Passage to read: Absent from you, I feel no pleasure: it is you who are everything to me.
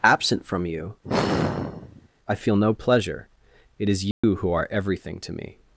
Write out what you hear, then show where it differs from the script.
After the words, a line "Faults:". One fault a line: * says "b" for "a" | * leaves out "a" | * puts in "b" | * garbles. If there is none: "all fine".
Absent from you, I feel no pleasure: it is you who are everything to me.
Faults:
all fine